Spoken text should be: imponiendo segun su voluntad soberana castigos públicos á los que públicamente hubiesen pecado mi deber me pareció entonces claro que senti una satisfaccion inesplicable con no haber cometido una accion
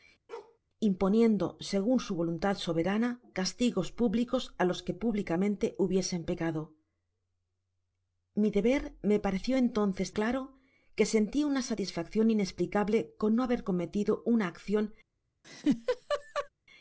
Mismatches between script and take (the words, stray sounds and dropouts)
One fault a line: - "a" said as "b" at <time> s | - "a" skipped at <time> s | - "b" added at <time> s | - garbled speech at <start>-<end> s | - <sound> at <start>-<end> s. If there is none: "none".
- bark at 0.3-0.6 s
- laugh at 15.4-16.5 s